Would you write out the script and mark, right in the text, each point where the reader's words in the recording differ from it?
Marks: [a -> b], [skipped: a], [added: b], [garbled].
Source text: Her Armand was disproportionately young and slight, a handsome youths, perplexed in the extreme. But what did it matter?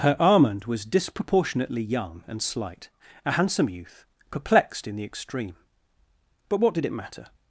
Her Armand was disproportionately young and slight, a handsome [youths, -> youth] perplexed in the extreme. But what did it matter?